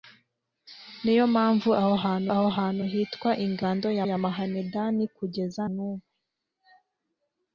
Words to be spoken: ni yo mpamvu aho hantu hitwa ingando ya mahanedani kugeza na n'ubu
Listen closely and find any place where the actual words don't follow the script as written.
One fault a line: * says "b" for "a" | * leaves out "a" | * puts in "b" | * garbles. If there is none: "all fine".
* puts in "aho hantu"
* puts in "ya"
* leaves out "na"